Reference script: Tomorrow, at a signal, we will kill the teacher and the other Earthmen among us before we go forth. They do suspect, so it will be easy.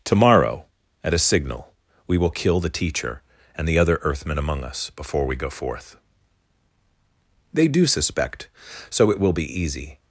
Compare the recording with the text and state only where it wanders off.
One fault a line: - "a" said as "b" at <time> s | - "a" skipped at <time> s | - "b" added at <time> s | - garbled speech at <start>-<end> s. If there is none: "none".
none